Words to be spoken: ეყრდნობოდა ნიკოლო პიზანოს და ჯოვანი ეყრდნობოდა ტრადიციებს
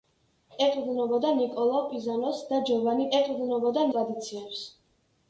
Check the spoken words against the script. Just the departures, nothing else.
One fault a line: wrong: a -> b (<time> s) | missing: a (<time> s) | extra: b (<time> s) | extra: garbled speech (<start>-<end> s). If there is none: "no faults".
no faults